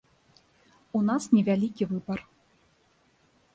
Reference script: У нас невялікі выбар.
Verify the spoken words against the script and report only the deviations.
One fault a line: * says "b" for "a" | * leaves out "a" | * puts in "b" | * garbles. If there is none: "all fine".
all fine